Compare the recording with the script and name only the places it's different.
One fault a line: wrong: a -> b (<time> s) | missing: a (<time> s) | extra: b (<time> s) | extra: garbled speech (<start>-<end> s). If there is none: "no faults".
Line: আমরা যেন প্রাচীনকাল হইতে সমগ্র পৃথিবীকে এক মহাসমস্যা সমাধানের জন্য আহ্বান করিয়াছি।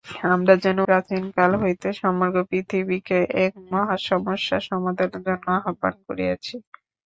no faults